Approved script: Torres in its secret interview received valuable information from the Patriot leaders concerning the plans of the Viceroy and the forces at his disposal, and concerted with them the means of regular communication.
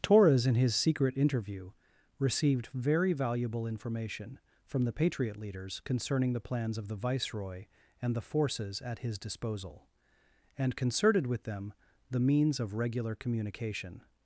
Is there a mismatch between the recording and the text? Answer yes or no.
yes